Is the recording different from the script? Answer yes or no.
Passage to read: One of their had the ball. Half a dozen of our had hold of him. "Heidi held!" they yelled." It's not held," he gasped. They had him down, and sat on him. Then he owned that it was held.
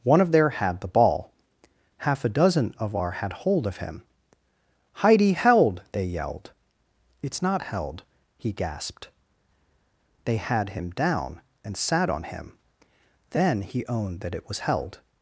no